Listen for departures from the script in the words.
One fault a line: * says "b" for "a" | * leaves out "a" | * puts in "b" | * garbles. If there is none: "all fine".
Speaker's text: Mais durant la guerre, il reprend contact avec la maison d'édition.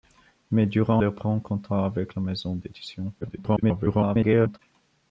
* leaves out "la guerre il"
* garbles